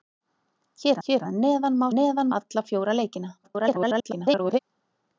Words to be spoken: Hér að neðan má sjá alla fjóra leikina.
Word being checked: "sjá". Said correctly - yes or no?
no